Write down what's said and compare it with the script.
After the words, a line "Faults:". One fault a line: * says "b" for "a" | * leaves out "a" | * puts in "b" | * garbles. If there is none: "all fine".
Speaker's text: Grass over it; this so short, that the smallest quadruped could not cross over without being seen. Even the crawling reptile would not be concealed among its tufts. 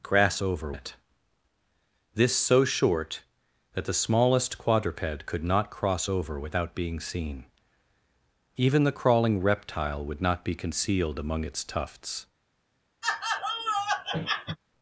Grass over it; this so short, that the smallest quadruped could not cross over without being seen. Even the crawling reptile would not be concealed among its tufts.
Faults:
all fine